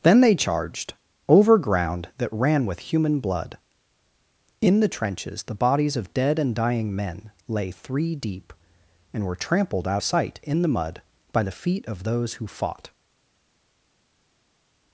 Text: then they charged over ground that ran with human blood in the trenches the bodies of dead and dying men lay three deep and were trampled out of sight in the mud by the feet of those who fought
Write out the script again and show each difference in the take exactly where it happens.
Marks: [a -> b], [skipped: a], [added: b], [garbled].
then they charged over ground that ran with human blood in the trenches the bodies of dead and dying men lay three deep and were trampled out [skipped: of] sight in the mud by the feet of those who fought